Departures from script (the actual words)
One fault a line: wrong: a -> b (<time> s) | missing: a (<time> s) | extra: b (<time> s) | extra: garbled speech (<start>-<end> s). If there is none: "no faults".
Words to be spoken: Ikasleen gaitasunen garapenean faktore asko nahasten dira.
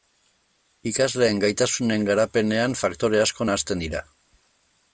no faults